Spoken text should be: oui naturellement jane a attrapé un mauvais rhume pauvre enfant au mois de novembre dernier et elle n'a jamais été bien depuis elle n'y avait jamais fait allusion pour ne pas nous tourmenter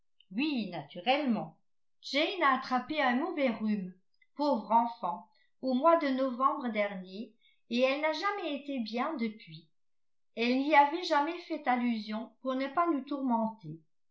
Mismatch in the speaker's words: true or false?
false